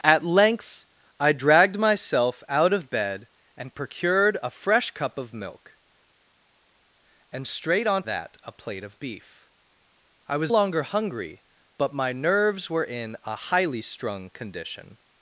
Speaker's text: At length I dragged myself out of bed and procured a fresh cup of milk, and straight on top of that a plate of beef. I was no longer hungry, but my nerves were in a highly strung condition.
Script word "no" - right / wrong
wrong